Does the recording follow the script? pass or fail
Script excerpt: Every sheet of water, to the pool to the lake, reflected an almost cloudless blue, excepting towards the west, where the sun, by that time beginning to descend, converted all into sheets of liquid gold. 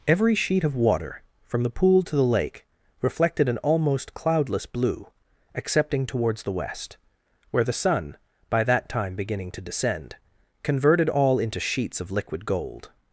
fail